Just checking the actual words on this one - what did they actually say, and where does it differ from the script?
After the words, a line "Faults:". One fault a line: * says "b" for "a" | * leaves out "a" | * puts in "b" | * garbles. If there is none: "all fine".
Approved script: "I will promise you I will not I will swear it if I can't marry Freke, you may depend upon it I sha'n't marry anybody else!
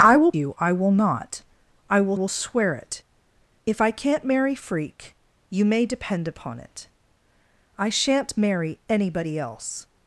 "I will you I will not I will will swear it if I can't marry Freke, you may depend upon it I sha'n't marry anybody else!
Faults:
* leaves out "promise"
* puts in "will"